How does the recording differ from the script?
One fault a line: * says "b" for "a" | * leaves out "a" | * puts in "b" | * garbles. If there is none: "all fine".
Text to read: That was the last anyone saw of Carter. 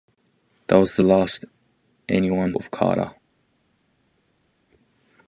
* leaves out "saw"